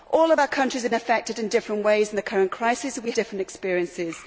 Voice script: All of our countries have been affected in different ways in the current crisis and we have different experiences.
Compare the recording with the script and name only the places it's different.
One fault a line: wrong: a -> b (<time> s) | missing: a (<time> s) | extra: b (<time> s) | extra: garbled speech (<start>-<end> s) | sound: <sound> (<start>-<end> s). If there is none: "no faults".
missing: been (0.9 s)
missing: have (3.1 s)